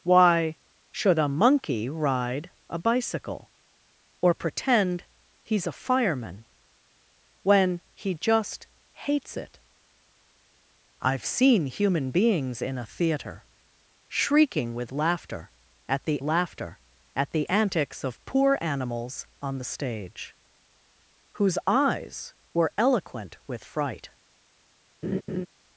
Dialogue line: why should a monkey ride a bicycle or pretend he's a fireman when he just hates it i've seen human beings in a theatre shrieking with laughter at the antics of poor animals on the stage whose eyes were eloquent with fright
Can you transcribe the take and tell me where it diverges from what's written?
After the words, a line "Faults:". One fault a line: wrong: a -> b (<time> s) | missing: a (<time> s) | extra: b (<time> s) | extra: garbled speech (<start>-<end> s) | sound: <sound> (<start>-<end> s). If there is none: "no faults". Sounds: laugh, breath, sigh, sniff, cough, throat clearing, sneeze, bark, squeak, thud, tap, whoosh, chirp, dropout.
why should a monkey ride a bicycle or pretend he's a fireman when he just hates it i've seen human beings in a theatre shrieking with laughter at the laughter at the antics of poor animals on the stage whose eyes were eloquent with fright
Faults:
extra: laughter at the (16.2 s)
sound: laugh (25.0-25.5 s)